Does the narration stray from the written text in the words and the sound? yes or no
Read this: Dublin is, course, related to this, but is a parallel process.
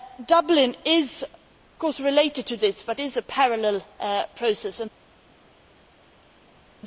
no